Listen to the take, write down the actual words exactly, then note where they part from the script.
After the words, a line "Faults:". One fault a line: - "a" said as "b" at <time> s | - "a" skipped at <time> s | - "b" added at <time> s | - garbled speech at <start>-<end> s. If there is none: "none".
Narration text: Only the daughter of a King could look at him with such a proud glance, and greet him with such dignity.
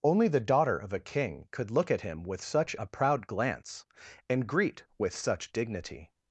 Only the daughter of a King could look at him with such a proud glance, and greet with such dignity.
Faults:
- "him" skipped at 4.8 s